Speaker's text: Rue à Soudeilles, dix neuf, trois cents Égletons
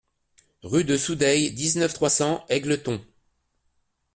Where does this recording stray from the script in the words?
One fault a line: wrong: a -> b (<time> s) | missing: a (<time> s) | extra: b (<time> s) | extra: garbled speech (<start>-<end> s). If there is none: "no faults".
wrong: à -> de (0.8 s)